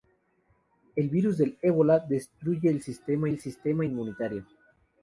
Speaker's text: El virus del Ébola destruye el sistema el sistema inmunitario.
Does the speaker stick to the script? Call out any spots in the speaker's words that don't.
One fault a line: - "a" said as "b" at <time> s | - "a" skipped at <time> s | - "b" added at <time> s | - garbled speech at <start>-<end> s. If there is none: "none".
none